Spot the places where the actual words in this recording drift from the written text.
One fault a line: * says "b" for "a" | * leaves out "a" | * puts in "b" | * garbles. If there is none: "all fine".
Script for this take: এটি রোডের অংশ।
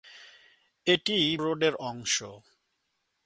all fine